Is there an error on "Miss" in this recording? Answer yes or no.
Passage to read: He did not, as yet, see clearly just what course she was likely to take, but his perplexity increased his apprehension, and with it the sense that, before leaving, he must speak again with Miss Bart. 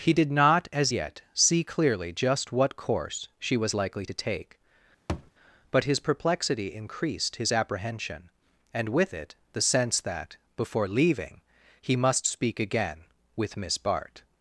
no